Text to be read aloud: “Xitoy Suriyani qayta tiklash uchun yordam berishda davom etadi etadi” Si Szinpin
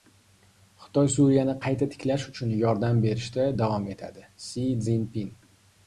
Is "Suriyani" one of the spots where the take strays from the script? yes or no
no